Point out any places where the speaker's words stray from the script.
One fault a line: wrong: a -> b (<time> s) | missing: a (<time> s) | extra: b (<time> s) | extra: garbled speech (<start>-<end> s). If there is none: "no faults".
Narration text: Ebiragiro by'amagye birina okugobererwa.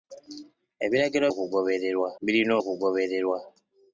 wrong: by'amagye -> okugobererwa (1.3 s)